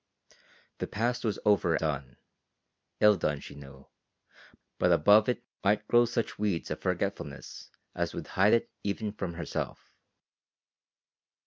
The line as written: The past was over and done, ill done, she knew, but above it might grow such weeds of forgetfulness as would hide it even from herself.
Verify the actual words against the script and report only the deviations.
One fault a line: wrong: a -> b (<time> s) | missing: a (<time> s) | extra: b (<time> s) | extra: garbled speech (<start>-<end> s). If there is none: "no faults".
missing: and (1.8 s)